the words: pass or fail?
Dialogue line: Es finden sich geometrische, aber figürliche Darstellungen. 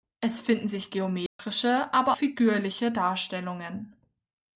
pass